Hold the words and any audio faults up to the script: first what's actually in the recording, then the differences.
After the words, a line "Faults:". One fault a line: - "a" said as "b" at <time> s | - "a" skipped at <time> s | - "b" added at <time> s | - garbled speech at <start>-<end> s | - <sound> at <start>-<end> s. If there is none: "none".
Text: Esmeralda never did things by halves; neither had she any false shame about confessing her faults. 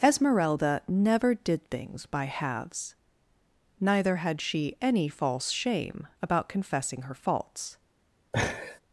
Esmeralda never did things by halves; neither had she any false shame about confessing her faults.
Faults:
- laugh at 8.3-8.8 s